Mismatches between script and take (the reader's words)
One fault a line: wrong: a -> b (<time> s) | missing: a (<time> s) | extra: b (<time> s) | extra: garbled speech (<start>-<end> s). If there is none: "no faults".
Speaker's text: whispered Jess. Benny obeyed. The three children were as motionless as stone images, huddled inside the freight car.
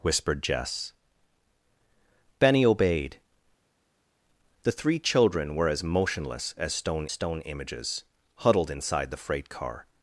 extra: stone (7.1 s)